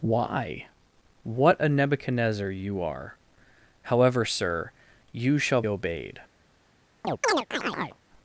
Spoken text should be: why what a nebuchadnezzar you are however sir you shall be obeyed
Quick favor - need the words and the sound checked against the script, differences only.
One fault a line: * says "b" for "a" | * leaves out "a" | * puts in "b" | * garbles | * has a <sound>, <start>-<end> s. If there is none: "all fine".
* leaves out "be"
* has a chirp, 7.0-8.0 s